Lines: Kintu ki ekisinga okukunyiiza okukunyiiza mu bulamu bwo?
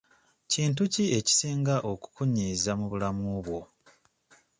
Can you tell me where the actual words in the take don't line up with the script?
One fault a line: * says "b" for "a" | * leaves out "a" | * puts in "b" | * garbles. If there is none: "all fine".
* leaves out "okukunyiiza"